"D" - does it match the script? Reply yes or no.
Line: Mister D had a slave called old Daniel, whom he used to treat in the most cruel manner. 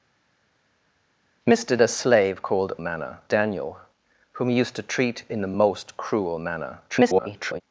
no